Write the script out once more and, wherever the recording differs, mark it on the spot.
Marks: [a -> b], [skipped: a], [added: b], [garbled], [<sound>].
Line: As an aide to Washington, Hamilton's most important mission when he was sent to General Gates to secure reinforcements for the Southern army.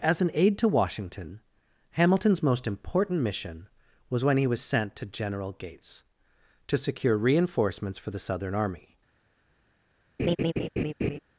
As an aide to Washington, Hamilton's most important mission [added: was] when he was sent to General Gates to secure reinforcements for the Southern army. [laugh]